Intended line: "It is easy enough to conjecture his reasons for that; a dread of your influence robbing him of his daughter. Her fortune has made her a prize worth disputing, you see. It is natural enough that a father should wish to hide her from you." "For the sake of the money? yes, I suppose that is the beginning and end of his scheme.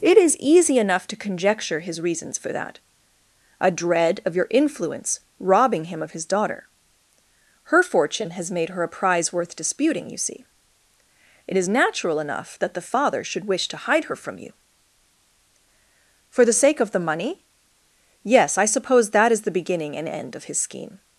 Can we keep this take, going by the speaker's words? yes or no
no